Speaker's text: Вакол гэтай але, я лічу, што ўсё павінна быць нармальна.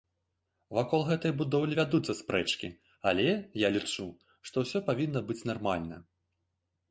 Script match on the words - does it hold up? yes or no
no